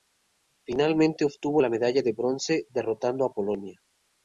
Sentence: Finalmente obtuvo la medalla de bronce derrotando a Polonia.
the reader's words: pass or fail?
pass